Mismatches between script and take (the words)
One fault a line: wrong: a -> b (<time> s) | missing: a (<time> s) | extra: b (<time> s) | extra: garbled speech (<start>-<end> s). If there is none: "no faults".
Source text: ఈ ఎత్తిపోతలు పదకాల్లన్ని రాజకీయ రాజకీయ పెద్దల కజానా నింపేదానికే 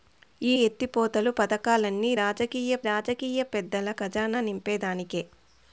no faults